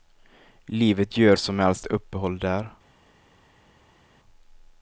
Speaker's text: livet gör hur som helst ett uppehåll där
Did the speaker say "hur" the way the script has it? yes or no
no